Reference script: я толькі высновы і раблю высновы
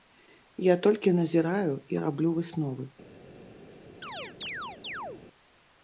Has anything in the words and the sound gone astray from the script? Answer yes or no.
yes